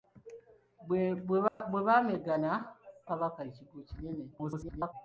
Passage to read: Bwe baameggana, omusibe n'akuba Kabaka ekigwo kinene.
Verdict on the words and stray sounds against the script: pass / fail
fail